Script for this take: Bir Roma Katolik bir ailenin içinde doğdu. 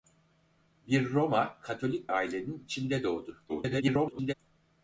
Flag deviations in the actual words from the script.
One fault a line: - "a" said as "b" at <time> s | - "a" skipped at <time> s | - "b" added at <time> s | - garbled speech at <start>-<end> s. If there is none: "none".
- "bir" skipped at 2.1 s
- garbled speech at 3.5-4.3 s